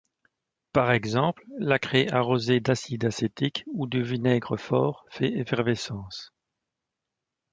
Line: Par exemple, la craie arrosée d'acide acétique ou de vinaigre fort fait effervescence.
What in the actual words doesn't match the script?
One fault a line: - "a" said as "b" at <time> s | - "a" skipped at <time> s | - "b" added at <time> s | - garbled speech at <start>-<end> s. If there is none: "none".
none